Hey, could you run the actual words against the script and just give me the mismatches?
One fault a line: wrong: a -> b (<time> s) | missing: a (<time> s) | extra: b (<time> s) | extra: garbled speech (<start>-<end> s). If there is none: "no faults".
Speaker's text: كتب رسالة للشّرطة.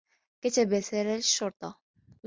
no faults